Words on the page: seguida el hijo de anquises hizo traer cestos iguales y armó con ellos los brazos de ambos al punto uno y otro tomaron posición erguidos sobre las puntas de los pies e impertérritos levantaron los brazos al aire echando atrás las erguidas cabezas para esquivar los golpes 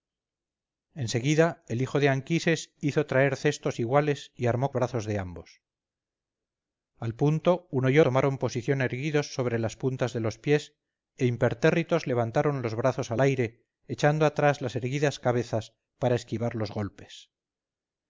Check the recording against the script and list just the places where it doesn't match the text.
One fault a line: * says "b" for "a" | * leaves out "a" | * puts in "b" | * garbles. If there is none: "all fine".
* leaves out "con ellos los"
* leaves out "otro"